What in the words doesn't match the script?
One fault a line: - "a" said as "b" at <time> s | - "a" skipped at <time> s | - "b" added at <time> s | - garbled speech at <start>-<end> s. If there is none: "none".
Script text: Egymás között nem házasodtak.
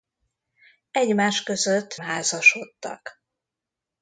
- "nem" skipped at 2.0 s